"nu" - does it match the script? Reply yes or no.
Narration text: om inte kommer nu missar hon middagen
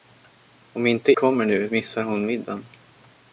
yes